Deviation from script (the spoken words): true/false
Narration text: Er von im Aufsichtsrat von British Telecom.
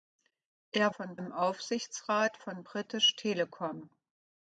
false